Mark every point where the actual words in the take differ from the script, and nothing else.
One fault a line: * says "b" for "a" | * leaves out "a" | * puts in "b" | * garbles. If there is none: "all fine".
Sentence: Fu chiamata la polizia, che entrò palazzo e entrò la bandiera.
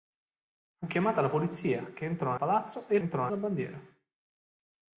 all fine